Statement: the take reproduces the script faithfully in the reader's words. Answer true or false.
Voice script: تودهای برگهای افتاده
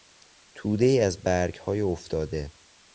false